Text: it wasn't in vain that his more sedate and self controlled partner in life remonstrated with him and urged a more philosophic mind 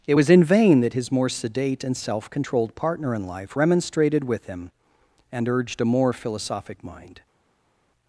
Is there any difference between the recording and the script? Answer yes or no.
yes